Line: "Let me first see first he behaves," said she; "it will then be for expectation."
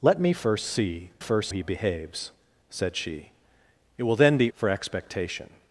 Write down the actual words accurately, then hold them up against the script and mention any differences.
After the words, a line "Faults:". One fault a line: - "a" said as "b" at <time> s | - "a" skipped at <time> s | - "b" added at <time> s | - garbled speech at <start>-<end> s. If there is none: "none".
"Let me first see first he behaves," said she; "it will then be for expectation."
Faults:
none